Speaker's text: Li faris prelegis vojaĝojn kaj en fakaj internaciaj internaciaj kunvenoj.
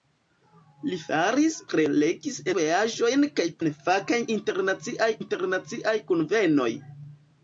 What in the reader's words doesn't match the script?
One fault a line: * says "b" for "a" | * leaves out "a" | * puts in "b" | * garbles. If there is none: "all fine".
all fine